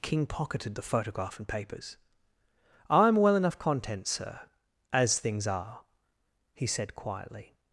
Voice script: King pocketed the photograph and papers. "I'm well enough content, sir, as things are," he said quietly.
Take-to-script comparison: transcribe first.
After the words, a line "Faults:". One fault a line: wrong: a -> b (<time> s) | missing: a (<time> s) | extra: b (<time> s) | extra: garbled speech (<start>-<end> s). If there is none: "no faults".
King pocketed the photograph and papers. "I'm well enough content, sir, as things are," he said quietly.
Faults:
no faults